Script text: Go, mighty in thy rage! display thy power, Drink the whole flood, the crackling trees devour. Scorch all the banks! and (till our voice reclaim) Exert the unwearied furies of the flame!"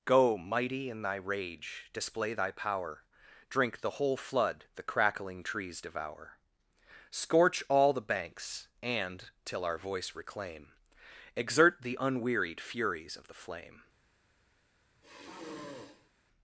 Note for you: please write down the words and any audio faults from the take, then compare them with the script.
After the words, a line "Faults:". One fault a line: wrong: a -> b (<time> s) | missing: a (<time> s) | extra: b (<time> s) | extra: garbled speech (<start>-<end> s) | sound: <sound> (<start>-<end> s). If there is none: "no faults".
Go, mighty in thy rage! display thy power, Drink the whole flood, the crackling trees devour. Scorch all the banks! and (till our voice reclaim) Exert the unwearied furies of the flame!"
Faults:
sound: sigh (15.0-16.1 s)